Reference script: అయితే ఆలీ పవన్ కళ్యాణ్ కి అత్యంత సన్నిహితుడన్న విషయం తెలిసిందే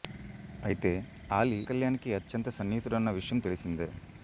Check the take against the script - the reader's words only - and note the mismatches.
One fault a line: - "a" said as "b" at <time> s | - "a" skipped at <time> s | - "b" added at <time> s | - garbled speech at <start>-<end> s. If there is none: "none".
- "పవన్" skipped at 1.6 s